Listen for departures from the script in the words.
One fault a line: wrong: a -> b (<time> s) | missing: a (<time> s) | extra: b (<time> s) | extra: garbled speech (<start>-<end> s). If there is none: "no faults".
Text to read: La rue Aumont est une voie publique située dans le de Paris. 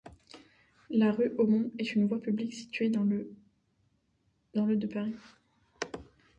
no faults